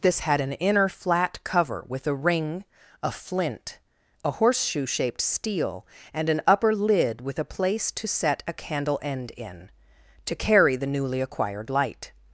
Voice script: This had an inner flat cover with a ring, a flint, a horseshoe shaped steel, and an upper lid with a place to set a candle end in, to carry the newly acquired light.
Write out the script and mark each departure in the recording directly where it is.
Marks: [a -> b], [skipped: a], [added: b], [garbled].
This had an inner flat cover with a ring, a flint, a horseshoe shaped steel, and an upper lid with a place to set a candle end in, to carry the newly acquired light.